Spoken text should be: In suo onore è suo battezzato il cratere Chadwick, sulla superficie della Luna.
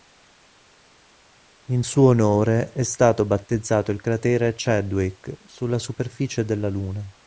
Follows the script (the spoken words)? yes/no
no